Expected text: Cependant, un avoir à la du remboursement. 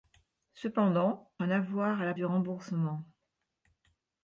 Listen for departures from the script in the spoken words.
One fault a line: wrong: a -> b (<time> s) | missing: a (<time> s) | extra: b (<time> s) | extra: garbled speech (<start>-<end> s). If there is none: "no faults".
no faults